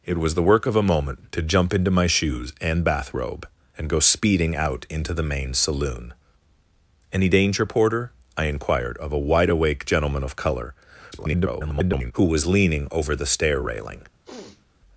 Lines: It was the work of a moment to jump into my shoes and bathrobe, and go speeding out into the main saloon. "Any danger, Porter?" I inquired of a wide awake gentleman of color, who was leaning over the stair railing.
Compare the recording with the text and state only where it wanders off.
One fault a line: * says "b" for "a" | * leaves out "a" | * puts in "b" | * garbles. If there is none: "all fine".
* garbles